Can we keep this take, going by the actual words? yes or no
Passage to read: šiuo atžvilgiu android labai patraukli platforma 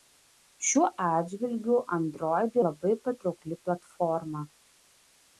yes